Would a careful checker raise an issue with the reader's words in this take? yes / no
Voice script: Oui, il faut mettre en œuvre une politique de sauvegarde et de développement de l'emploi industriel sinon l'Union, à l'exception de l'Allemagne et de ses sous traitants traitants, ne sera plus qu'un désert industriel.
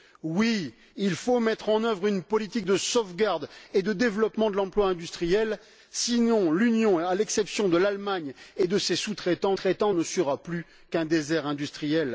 no